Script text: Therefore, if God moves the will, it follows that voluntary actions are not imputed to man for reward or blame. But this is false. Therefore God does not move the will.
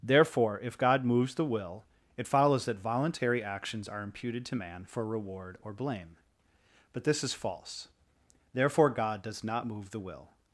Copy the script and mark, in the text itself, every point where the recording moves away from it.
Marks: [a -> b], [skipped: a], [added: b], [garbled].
Therefore, if God moves the will, it follows that voluntary actions are [skipped: not] imputed to man for reward or blame. But this is false. Therefore God does not move the will.